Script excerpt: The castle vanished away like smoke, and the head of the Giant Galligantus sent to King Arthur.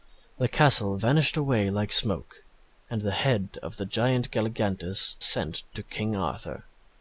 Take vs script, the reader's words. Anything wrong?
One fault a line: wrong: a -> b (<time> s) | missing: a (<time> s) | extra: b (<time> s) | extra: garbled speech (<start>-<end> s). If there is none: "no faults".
no faults